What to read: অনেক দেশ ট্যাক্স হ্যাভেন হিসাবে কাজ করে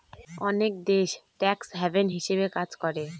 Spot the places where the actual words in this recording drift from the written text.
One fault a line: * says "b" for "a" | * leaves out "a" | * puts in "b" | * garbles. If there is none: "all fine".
all fine